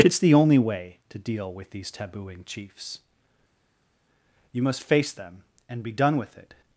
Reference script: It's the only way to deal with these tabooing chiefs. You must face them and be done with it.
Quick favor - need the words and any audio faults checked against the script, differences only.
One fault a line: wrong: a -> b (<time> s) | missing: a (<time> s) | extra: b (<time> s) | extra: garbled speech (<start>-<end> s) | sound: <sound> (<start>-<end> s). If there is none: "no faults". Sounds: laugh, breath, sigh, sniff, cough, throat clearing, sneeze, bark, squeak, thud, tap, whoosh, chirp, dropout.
no faults